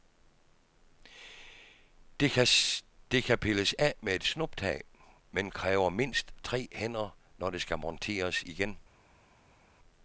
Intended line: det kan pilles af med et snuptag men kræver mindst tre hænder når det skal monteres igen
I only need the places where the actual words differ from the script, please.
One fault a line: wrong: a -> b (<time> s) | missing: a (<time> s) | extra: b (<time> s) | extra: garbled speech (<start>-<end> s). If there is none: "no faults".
no faults